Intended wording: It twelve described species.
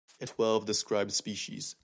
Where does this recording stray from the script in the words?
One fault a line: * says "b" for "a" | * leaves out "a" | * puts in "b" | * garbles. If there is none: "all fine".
all fine